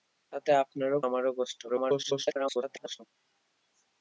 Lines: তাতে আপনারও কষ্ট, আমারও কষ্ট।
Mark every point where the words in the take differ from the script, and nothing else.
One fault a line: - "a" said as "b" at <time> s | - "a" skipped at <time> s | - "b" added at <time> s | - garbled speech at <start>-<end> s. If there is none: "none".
- "কষ্ট" skipped at 1.0 s
- garbled speech at 1.7-3.0 s